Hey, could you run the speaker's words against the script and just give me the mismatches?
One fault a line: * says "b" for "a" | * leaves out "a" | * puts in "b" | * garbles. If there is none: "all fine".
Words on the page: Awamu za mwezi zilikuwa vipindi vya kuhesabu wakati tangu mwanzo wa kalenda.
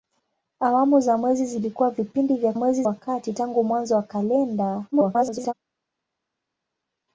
* says "mwezi" for "kuhesabu"
* garbles